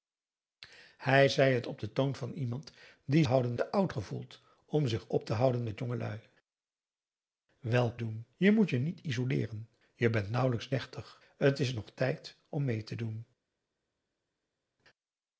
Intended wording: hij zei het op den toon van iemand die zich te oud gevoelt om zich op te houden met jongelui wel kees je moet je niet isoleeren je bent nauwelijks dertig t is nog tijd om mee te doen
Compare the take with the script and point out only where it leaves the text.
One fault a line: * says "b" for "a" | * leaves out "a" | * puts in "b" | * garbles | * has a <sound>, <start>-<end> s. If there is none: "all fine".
* says "houden" for "zich"
* says "doen" for "kees"